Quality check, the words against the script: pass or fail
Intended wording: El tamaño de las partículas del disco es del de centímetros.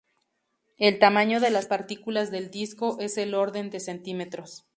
fail